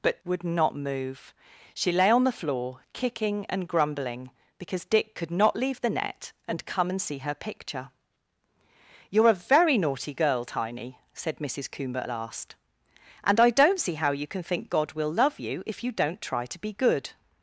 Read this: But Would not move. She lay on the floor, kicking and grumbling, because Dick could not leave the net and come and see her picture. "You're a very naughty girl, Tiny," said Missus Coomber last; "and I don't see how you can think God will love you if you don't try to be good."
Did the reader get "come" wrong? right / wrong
right